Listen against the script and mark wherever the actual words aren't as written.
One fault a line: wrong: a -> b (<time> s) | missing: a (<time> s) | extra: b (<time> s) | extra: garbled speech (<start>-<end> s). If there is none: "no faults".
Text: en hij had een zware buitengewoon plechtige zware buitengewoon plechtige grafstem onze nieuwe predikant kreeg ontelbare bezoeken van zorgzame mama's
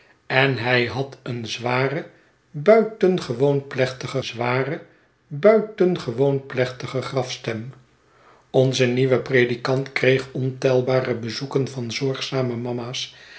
no faults